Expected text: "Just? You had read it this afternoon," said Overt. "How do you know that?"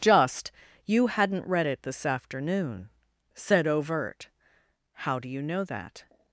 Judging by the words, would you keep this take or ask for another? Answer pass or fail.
fail